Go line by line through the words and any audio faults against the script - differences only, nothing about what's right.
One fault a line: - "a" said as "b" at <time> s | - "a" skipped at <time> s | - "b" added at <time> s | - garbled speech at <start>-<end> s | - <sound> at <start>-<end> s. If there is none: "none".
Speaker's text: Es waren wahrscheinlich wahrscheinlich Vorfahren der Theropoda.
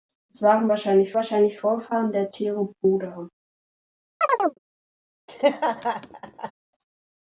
- chirp at 4.2-4.6 s
- laugh at 5.3-6.5 s